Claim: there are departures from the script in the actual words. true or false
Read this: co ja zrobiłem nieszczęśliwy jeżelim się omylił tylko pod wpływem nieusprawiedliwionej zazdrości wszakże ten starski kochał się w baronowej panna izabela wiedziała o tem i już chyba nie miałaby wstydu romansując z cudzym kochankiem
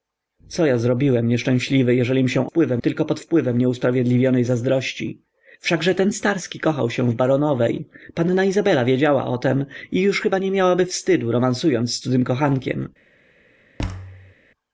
true